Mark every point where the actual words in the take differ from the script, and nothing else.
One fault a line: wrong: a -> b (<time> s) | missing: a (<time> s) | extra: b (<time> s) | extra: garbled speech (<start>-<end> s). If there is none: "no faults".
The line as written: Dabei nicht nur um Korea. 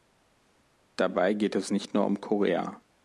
extra: geht es (1.3 s)